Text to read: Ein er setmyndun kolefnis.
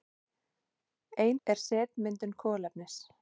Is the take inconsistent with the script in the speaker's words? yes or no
no